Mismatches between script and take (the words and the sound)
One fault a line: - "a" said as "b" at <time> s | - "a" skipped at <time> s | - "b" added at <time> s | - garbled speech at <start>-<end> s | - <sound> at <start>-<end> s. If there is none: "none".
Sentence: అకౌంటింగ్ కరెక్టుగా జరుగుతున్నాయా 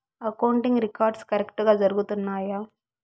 - "రికార్డ్స్" added at 0.8 s